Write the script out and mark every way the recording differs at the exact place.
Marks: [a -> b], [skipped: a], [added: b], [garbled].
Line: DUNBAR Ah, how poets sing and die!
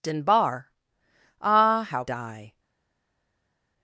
DUNBAR Ah, how [skipped: poets sing and] die!